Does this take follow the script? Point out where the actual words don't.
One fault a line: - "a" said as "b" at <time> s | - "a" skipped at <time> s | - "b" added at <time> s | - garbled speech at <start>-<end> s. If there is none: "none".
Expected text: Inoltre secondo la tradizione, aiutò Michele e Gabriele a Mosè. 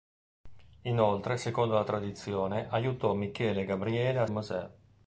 none